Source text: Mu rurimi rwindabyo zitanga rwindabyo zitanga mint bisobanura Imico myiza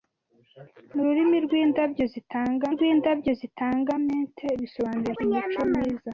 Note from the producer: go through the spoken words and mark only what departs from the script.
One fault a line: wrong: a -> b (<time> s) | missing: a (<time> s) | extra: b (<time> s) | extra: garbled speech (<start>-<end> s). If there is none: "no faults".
no faults